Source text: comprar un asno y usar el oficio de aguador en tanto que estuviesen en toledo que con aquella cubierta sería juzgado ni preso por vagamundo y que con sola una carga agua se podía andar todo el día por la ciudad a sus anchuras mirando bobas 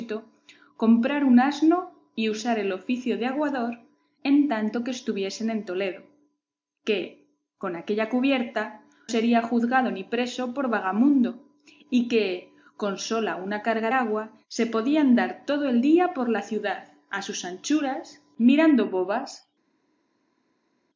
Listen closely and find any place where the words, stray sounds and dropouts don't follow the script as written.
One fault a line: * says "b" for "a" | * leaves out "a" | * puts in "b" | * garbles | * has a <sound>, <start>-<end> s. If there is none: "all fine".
all fine